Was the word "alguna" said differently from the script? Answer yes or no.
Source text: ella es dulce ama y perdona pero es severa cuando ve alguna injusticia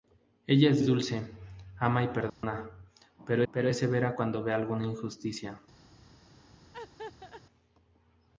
no